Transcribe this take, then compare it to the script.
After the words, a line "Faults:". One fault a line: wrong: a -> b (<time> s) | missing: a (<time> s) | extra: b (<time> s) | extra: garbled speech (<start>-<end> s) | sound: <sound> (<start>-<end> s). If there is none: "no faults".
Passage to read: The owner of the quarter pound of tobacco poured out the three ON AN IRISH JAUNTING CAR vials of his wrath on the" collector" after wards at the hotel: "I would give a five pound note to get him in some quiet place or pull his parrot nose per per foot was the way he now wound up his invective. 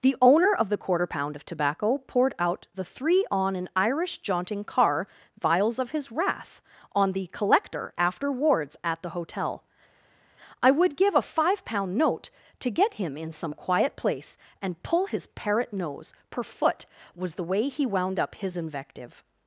The owner of the quarter pound of tobacco poured out the three ON AN IRISH JAUNTING CAR vials of his wrath on the" collector" after wards at the hotel: "I would give a five pound note to get him in some quiet place and pull his parrot nose per foot was the way he wound up his invective.
Faults:
wrong: or -> and (14.6 s)
missing: per (16.4 s)
missing: now (17.9 s)